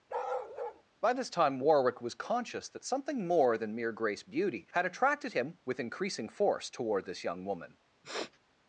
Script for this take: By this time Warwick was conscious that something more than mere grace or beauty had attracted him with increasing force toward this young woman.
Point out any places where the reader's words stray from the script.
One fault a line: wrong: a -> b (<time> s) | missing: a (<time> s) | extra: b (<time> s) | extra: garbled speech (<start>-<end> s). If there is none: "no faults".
missing: or (4.2 s)